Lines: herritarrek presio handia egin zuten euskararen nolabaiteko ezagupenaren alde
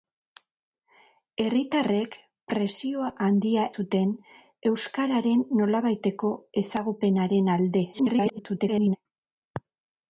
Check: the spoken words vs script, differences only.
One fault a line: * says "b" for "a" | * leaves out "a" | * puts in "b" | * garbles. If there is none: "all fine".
* leaves out "egin"
* garbles